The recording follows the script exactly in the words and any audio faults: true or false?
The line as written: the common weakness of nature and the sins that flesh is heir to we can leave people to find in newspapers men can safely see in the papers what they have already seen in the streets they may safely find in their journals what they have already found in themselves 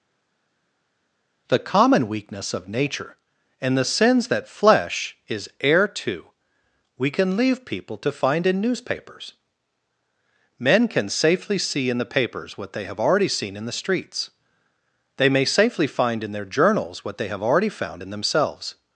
true